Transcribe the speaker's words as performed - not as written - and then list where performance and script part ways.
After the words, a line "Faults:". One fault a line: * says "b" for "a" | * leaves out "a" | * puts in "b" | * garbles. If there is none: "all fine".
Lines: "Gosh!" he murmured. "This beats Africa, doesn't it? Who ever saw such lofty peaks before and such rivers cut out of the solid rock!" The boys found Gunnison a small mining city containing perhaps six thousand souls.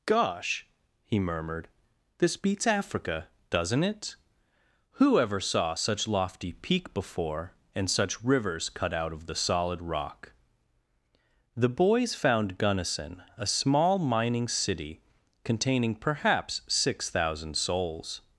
"Gosh!" he murmured. "This beats Africa, doesn't it? Who ever saw such lofty peak before and such rivers cut out of the solid rock!" The boys found Gunnison a small mining city containing perhaps six thousand souls.
Faults:
* says "peak" for "peaks"